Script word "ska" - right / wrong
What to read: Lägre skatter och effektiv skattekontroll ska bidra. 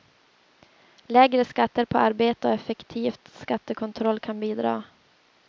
wrong